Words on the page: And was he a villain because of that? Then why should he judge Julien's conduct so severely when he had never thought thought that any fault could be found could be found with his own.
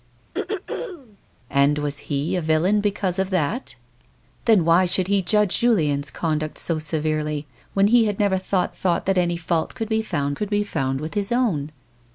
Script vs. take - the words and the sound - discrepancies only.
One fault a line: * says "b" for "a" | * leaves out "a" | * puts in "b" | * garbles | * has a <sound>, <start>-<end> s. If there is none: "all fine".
* has a throat clearing, 0.3-1.2 s